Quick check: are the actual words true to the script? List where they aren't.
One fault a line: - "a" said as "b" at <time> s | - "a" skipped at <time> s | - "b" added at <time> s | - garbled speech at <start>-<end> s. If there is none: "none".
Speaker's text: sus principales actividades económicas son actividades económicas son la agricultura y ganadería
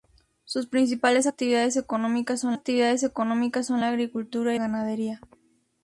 none